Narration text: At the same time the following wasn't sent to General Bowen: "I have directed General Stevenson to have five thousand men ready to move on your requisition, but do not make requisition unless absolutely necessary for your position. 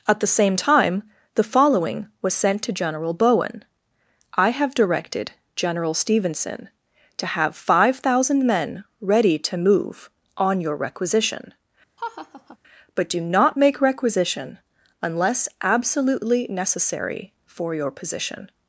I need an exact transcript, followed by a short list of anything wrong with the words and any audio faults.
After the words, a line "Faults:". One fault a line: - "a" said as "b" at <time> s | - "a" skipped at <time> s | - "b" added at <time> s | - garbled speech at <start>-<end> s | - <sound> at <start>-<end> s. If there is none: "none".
At the same time the following was sent to General Bowen: "I have directed General Stevenson to have five thousand men ready to move on your requisition, but do not make requisition unless absolutely necessary for your position.
Faults:
- "wasn't" said as "was" at 2.2 s
- laugh at 12.0-12.6 s